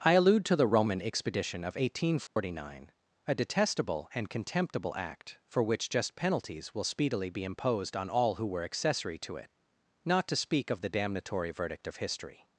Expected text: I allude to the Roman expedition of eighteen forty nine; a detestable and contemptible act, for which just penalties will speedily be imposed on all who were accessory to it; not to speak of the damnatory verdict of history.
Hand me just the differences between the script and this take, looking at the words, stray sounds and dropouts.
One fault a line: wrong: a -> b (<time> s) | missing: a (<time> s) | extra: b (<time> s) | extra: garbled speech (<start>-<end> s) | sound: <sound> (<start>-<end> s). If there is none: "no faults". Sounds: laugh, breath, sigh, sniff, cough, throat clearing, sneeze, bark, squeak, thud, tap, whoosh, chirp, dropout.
sound: dropout (2.3-2.4 s)